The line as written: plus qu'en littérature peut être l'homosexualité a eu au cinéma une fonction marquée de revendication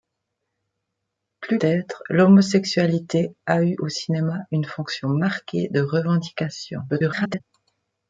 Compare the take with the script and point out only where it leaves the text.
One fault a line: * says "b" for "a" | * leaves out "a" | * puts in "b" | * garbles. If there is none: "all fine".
* leaves out "qu'en littérature peut"
* garbles